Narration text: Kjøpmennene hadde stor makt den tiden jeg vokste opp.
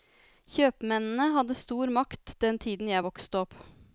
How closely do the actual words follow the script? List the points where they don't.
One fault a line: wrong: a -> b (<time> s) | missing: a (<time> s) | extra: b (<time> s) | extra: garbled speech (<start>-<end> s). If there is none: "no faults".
no faults